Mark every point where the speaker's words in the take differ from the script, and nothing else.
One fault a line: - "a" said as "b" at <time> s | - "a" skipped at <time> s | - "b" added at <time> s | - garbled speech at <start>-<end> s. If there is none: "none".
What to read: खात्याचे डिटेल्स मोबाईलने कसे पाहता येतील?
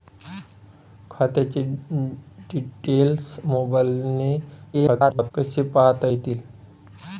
- garbled speech at 4.7-5.3 s